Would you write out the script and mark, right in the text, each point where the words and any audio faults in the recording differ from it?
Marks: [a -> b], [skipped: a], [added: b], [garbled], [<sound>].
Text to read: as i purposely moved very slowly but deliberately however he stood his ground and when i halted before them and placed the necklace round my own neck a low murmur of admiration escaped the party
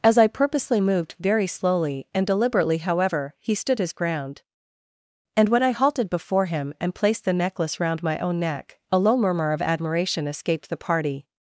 as i purposely moved very slowly [but -> and] deliberately however he stood his ground and when i halted before [them -> him] and placed the necklace round my own neck a low murmur of admiration escaped the party